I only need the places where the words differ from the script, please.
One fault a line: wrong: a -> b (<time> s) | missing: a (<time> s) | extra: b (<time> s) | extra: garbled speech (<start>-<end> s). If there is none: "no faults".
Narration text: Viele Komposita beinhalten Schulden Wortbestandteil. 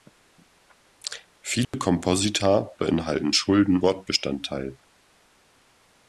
no faults